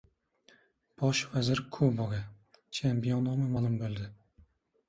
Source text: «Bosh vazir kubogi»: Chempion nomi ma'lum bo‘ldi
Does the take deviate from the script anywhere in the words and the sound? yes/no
no